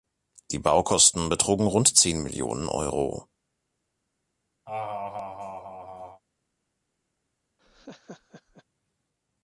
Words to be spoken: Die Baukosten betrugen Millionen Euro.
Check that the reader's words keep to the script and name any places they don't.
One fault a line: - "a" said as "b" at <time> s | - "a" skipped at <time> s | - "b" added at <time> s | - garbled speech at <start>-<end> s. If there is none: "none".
- "rund zehn" added at 1.7 s